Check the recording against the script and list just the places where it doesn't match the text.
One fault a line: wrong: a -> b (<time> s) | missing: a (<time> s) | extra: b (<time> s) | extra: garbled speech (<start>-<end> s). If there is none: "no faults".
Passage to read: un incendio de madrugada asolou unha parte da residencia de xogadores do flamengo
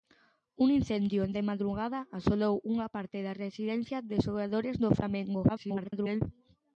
extra: garbled speech (5.5-6.2 s)